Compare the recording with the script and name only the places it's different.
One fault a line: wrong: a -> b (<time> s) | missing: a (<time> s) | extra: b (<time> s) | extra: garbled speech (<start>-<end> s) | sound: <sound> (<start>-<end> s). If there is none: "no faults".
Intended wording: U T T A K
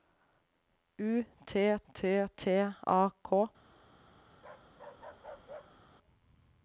extra: T (2.4 s)
sound: bark (4.3-5.8 s)